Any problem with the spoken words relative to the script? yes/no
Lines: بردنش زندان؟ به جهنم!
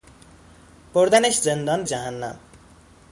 yes